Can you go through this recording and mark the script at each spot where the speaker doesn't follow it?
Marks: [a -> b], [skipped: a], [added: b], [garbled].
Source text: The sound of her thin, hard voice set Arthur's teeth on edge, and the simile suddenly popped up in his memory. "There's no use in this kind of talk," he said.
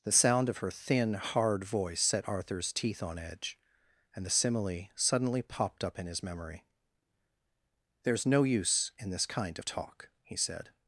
The sound of her thin, hard voice set Arthur's teeth on edge, and the simile suddenly popped up in his memory. "There's no use in this kind of talk," he said.